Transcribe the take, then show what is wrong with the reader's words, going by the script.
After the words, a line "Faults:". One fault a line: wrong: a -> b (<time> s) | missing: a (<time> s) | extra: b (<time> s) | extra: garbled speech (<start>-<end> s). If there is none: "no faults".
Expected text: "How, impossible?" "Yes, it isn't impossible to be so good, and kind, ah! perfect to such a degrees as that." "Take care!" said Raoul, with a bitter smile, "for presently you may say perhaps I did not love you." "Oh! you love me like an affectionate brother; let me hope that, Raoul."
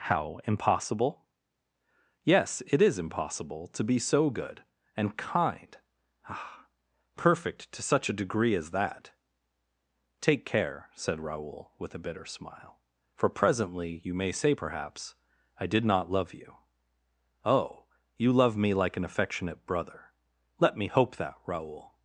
"How, impossible?" "Yes, it is impossible to be so good, and kind, ah! perfect to such a degree as that." "Take care!" said Raoul, with a bitter smile, "for presently you may say perhaps I did not love you." "Oh! you love me like an affectionate brother; let me hope that, Raoul."
Faults:
wrong: isn't -> is (2.8 s)
wrong: degrees -> degree (8.2 s)